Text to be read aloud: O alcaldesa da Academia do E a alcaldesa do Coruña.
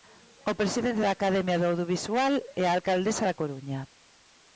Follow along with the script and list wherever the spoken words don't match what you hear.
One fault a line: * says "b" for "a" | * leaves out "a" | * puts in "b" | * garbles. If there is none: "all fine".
* says "presidente" for "alcaldesa"
* puts in "Audiovisual"
* says "da" for "do"